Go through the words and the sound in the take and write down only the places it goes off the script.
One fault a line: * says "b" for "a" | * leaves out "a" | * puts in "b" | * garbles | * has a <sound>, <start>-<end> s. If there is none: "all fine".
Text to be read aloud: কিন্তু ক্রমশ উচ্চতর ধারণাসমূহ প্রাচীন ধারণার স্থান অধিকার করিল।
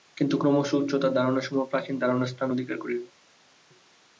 all fine